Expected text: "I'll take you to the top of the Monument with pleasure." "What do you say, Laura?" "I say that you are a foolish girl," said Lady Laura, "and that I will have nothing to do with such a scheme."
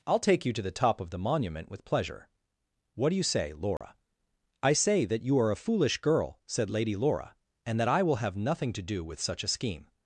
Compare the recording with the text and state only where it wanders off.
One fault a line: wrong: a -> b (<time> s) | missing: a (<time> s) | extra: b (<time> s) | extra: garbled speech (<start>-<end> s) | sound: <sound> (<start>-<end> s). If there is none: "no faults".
sound: dropout (3.8-3.8 s)